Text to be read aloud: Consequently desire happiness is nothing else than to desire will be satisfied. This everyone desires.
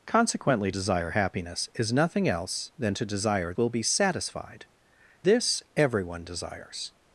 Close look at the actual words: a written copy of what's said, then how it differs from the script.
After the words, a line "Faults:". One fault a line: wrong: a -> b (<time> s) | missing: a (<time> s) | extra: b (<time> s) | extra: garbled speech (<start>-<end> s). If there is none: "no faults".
Consequently desire happiness is nothing else than to desire will be satisfied. This everyone desires.
Faults:
no faults